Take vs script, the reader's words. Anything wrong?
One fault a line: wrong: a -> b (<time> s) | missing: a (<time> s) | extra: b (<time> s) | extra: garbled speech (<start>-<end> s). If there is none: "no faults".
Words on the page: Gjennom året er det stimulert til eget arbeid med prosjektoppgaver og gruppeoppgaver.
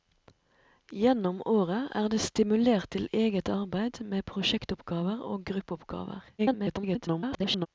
extra: garbled speech (6.4-7.7 s)